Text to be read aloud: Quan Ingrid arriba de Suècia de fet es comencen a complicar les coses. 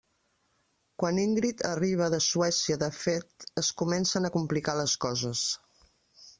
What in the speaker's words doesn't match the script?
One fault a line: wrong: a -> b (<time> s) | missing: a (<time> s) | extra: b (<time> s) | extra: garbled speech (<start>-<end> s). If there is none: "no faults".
no faults